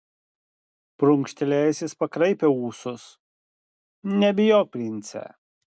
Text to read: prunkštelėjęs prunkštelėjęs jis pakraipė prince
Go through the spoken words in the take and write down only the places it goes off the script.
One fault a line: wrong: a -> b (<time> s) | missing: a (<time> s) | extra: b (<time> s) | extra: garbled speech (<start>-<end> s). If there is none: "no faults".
missing: prunkštelėjęs (1.8 s)
extra: ūsus nebijok (2.7 s)